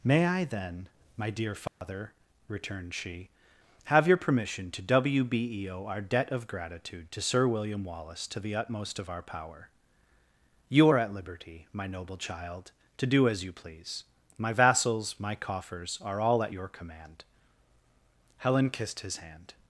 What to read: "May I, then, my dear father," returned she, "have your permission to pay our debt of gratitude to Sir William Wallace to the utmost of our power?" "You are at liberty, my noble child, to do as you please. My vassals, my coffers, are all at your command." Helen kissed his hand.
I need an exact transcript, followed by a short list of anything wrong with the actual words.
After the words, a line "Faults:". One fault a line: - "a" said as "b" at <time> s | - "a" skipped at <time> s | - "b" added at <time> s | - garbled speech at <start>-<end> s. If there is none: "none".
"May I, then, my dear father," returned she, "have your permission to wbeo our debt of gratitude to Sir William Wallace to the utmost of our power?" "You are at liberty, my noble child, to do as you please. My vassals, my coffers, are all at your command." Helen kissed his hand.
Faults:
- "pay" said as "wbeo" at 4.8 s